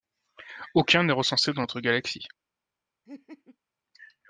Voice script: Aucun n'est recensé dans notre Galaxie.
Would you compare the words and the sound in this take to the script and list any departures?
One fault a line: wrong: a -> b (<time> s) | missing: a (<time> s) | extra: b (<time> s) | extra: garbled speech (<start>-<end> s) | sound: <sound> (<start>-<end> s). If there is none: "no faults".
sound: laugh (3.1-3.6 s)